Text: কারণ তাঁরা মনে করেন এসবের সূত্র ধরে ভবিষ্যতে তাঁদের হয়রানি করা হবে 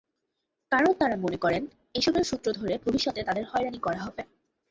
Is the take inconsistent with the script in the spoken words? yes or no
no